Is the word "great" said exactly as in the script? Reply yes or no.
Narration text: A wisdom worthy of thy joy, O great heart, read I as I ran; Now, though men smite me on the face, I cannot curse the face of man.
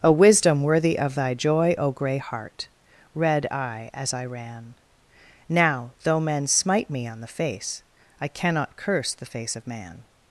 no